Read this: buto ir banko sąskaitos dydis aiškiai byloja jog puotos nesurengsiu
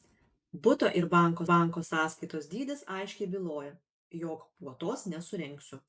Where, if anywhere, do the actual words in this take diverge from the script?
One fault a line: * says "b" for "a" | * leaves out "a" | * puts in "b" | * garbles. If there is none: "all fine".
* puts in "banko"